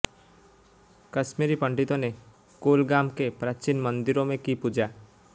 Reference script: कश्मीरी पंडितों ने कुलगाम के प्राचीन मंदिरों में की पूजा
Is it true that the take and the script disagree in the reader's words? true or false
false